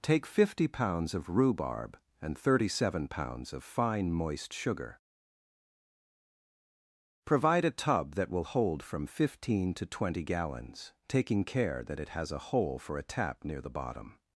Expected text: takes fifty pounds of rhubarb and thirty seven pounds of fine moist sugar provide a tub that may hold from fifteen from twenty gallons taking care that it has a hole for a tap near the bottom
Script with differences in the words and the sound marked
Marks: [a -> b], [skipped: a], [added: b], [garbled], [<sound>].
[takes -> take] fifty pounds of rhubarb and thirty seven pounds of fine moist sugar provide a tub that [may -> will] hold from fifteen [from -> to] twenty gallons taking care that it has a hole for a tap near the bottom